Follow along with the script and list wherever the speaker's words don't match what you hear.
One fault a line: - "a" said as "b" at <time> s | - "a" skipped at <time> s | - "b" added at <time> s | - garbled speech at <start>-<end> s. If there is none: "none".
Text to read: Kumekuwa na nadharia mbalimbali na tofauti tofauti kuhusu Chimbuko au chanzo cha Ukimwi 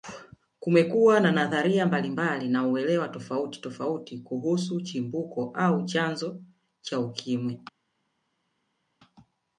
- "uelewa" added at 2.7 s